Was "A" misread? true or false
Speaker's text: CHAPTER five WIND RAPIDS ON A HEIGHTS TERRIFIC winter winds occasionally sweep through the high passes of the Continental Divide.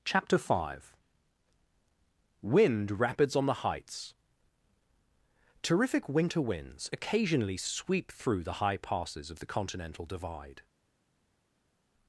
true